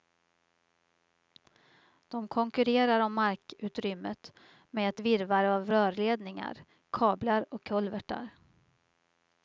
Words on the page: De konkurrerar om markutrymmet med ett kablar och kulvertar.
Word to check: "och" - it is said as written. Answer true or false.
true